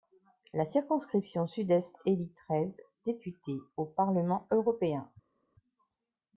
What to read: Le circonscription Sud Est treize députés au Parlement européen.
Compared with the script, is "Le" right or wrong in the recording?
wrong